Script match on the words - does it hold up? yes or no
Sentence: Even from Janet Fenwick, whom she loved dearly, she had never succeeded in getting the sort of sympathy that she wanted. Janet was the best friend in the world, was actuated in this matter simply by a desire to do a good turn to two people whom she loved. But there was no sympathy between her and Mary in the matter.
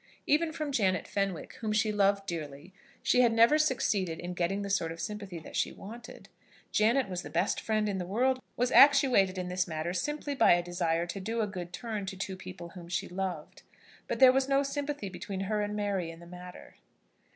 yes